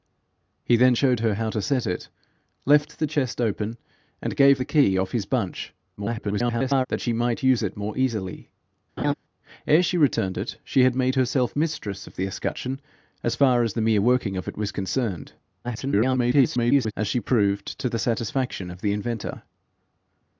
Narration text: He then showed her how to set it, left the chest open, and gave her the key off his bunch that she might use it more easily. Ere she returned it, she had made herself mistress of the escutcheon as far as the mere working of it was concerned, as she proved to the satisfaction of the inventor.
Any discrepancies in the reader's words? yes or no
yes